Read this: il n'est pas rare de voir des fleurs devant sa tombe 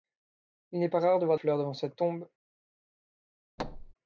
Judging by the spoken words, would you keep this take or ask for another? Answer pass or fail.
fail